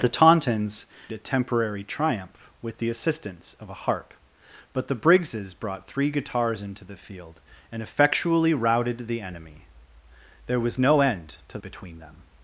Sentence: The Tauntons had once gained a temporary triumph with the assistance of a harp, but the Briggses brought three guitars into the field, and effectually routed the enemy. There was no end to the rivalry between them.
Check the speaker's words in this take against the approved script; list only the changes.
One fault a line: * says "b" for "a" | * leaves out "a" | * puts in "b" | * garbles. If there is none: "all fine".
* leaves out "had once gained"
* leaves out "the rivalry"